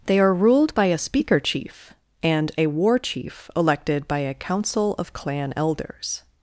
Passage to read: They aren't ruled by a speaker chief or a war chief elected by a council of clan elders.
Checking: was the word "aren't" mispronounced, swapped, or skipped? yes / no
yes